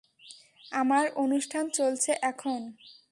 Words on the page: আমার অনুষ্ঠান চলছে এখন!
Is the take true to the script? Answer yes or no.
yes